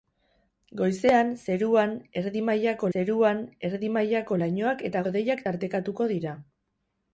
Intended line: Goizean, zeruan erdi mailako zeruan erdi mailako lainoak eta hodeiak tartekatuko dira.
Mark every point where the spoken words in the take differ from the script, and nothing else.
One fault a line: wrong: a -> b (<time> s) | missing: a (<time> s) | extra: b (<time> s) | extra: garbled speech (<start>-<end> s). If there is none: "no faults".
no faults